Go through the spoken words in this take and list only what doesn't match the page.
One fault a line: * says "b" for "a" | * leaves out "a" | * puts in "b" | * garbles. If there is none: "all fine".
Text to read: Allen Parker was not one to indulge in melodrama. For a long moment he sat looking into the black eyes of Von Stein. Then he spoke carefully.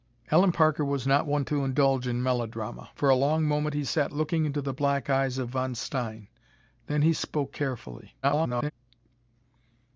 * garbles